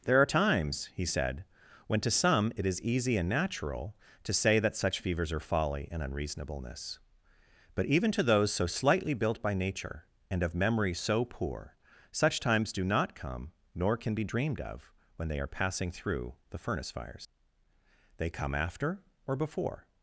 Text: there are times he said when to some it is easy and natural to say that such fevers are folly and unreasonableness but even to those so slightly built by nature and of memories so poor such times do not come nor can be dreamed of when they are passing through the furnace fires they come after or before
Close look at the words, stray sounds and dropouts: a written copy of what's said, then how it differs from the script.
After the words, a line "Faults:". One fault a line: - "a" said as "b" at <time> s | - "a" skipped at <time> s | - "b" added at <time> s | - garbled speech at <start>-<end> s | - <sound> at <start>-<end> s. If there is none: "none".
there are times he said when to some it is easy and natural to say that such fevers are folly and unreasonableness but even to those so slightly built by nature and of memory so poor such times do not come nor can be dreamed of when they are passing through the furnace fires they come after or before
Faults:
- "memories" said as "memory" at 10.5 s